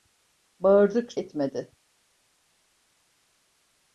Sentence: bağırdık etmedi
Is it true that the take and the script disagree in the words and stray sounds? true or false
false